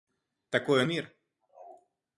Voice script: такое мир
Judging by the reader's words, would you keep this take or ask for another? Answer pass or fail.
pass